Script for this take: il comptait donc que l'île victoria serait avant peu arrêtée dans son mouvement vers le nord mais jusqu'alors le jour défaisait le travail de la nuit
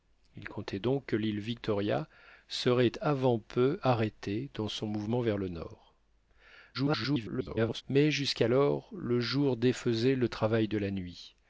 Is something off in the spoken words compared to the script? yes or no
yes